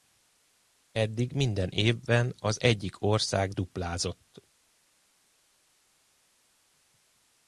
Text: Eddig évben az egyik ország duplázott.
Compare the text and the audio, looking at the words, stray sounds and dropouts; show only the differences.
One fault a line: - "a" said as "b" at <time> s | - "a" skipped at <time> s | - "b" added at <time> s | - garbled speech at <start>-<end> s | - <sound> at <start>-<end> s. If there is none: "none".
- "minden" added at 1.3 s